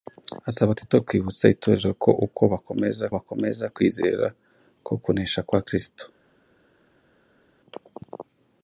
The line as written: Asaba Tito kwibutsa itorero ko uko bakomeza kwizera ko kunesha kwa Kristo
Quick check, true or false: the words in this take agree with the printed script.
false